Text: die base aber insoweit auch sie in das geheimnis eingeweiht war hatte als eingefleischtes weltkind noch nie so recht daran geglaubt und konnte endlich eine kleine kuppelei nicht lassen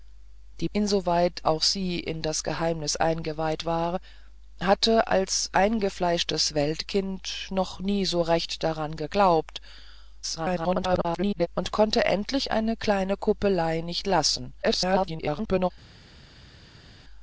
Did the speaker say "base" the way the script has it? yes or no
no